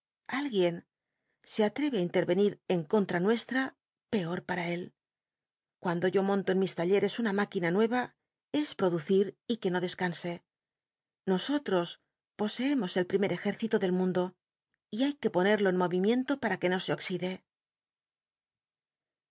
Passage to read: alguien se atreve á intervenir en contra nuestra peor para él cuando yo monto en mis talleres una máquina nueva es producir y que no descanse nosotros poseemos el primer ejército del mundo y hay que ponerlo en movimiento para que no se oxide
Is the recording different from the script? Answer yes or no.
no